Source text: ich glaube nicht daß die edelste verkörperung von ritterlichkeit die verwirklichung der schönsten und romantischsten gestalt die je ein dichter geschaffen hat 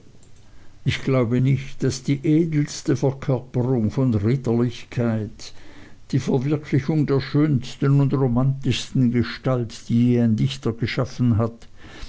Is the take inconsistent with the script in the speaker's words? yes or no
no